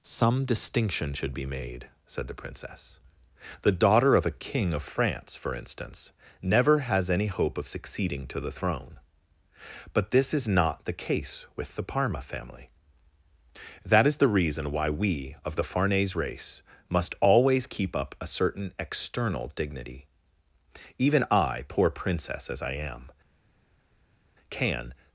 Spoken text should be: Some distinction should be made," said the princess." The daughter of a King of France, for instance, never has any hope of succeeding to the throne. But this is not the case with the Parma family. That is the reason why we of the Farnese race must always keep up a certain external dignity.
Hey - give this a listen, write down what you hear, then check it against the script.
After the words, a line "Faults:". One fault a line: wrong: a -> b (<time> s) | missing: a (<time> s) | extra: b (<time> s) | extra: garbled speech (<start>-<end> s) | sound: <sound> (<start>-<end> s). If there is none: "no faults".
Some distinction should be made," said the princess." The daughter of a King of France, for instance, never has any hope of succeeding to the throne. But this is not the case with the Parma family. That is the reason why we of the Farnese race must always keep up a certain external dignity. Even I, poor princess as I am, can
Faults:
extra: Even I poor princess as I am can (21.0 s)